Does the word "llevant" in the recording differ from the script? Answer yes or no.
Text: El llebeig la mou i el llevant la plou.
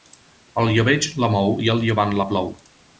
no